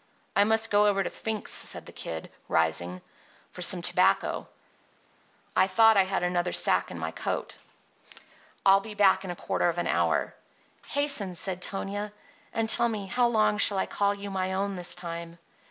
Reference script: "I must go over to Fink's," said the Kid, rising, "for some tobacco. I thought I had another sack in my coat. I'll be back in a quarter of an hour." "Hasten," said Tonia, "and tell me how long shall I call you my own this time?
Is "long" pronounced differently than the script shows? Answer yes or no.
no